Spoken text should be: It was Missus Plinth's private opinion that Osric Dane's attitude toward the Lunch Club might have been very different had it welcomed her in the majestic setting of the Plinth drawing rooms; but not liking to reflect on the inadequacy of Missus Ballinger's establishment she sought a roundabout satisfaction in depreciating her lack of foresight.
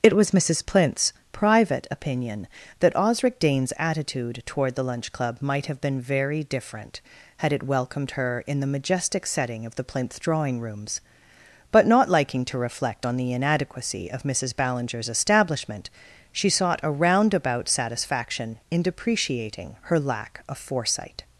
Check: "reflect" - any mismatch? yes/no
no